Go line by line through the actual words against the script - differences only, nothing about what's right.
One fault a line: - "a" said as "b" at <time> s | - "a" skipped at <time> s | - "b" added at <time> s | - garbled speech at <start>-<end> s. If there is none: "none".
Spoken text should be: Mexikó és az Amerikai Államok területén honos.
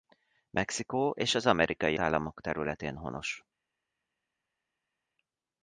none